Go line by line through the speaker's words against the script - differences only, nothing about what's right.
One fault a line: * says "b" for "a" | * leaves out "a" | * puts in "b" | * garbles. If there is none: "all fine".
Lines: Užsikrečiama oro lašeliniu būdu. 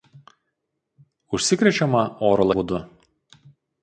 * leaves out "lašeliniu"